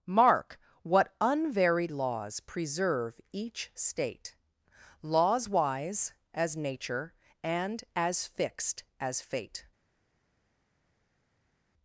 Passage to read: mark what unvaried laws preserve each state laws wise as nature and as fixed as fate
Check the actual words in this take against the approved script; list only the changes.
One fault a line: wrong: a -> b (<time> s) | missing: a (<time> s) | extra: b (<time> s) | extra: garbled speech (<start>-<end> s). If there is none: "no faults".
no faults